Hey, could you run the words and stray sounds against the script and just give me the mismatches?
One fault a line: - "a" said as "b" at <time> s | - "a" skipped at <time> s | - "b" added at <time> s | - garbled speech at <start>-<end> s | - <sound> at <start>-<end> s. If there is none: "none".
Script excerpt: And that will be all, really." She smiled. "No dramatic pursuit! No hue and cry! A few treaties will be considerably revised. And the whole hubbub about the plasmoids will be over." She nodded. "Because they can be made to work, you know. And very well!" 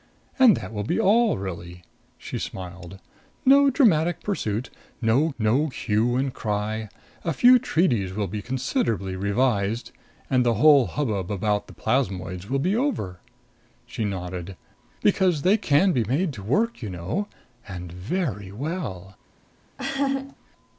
- "no" added at 5.4 s
- laugh at 19.8-20.4 s